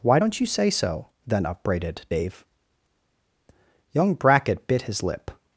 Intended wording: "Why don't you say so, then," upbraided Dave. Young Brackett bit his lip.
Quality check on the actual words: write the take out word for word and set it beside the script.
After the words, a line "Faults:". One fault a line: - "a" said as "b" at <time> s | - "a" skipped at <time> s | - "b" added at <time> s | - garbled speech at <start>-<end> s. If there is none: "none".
"Why don't you say so, then," upbraided Dave. Young Brackett bit his lip.
Faults:
none